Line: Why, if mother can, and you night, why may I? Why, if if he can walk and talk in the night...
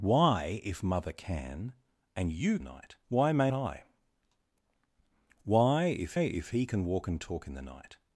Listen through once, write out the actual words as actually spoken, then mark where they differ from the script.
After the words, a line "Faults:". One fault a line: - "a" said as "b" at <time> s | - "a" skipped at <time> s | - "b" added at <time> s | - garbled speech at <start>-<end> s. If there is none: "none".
Why, if mother can, and you night, why may I? Why, if if he can walk and talk in the night...
Faults:
none